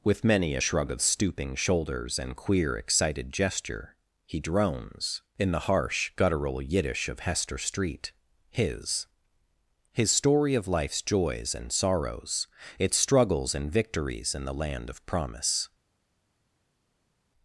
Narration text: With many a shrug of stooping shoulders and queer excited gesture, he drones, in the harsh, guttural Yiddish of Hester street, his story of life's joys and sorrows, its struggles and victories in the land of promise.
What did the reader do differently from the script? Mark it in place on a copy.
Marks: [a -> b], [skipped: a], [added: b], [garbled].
With many a shrug of stooping shoulders and queer excited gesture, he drones, in the harsh, guttural Yiddish of Hester street, his [added: his] story of life's joys and sorrows, its struggles and victories in the land of promise.